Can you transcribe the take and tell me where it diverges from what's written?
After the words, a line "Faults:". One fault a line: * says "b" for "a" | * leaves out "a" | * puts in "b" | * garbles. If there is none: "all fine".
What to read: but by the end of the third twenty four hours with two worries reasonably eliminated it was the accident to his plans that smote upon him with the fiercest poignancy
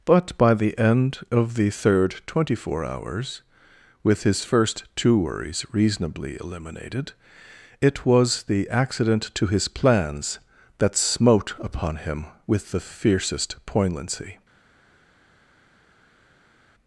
but by the end of the third twenty four hours with his first two worries reasonably eliminated it was the accident to his plans that smote upon him with the fiercest poignancy
Faults:
* puts in "his first"